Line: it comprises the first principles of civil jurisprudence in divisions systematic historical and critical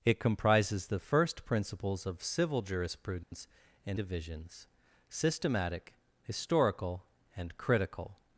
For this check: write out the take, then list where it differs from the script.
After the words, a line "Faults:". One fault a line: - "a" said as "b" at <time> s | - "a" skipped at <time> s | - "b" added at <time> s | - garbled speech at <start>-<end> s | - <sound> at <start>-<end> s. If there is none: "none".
it comprises the first principles of civil jurisprudence in divisions systematic historical and critical
Faults:
- dropout at 3.2-3.3 s